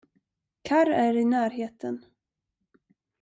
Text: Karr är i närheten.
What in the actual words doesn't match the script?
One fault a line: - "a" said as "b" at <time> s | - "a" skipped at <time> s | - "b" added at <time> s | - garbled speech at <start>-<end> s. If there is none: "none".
none